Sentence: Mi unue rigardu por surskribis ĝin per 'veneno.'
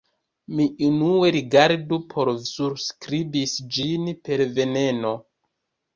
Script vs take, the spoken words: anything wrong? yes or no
no